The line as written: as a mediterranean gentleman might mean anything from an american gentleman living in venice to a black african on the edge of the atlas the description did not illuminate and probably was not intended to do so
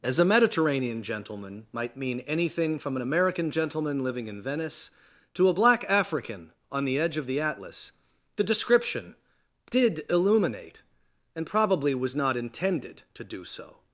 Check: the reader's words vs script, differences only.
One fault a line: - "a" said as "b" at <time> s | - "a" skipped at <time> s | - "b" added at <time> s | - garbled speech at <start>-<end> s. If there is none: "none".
- "not" skipped at 10.1 s